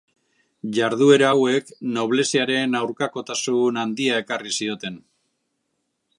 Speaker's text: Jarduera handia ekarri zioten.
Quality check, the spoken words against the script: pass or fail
fail